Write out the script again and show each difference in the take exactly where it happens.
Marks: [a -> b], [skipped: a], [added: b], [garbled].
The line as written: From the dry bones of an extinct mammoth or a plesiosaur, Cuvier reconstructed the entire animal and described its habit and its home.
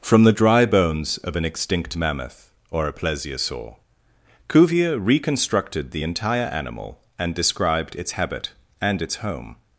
From the dry bones of an extinct mammoth or a plesiosaur, Cuvier reconstructed the entire animal and described its habit and its home.